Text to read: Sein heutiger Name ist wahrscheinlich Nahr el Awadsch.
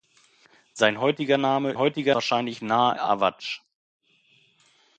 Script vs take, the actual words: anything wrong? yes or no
yes